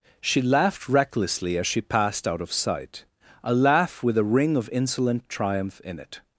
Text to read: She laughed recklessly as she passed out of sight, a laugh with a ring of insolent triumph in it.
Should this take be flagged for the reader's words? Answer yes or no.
no